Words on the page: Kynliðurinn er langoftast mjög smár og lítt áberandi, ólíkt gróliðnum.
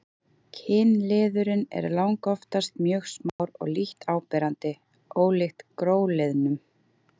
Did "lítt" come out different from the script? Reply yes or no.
no